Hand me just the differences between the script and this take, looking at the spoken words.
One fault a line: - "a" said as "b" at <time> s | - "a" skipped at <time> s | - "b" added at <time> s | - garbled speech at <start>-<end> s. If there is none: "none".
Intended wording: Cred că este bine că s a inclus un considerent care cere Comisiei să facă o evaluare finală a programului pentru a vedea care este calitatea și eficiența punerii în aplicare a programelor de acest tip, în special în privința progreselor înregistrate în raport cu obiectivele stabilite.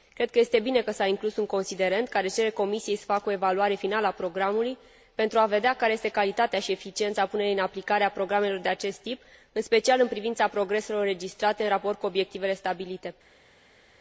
none